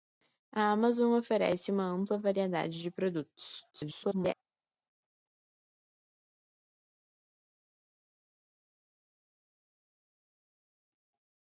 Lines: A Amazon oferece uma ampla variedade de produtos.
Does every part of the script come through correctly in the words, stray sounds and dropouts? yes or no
no